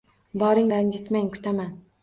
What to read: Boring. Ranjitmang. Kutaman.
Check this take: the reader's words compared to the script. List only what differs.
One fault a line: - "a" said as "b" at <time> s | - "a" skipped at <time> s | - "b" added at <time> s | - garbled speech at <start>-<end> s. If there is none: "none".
none